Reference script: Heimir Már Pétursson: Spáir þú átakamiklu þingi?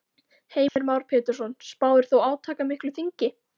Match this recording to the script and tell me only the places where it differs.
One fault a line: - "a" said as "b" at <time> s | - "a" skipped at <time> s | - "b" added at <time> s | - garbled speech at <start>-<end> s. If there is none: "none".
none